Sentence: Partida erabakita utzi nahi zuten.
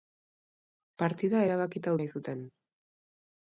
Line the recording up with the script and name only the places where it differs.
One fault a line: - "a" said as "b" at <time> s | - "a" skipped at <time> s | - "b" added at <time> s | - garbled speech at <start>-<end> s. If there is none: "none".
- "utzi" skipped at 2.0 s